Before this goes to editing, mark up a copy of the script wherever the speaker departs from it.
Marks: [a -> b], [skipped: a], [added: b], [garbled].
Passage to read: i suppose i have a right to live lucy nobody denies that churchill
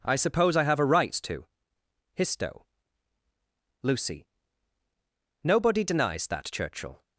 i suppose i have a right to [live -> histo] lucy nobody denies that churchill